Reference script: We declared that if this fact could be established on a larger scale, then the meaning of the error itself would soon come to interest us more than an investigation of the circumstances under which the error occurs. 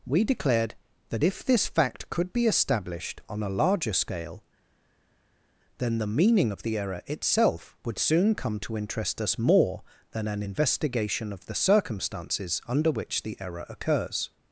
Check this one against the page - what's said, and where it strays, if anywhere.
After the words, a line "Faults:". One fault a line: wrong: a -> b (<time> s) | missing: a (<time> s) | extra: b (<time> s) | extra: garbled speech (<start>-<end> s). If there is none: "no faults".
We declared that if this fact could be established on a larger scale, then the meaning of the error itself would soon come to interest us more than an investigation of the circumstances under which the error occurs.
Faults:
no faults